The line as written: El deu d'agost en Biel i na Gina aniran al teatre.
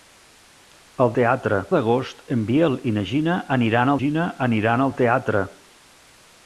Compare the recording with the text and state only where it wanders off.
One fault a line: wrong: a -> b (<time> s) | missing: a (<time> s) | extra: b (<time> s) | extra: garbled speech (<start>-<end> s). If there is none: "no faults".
wrong: deu -> teatre (1.2 s)
extra: Gina aniran (4.0 s)